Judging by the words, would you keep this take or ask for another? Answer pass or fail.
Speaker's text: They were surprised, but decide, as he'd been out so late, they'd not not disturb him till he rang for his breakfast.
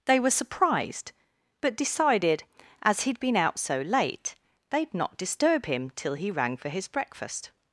fail